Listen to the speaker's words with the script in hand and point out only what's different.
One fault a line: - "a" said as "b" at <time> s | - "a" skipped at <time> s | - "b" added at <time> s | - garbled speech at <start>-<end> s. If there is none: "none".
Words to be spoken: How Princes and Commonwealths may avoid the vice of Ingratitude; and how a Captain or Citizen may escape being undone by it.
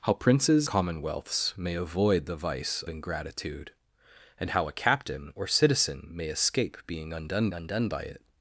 - "and" skipped at 0.7 s
- "of" skipped at 2.8 s
- "undone" added at 7.5 s